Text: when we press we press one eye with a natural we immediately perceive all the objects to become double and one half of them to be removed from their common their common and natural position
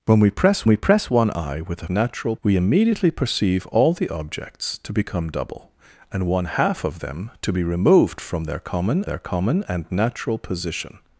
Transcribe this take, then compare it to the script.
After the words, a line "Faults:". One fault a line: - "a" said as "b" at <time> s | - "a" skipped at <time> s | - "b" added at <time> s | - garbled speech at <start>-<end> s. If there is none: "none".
when we press we press one eye with a natural we immediately perceive all the objects to become double and one half of them to be removed from their common their common and natural position
Faults:
none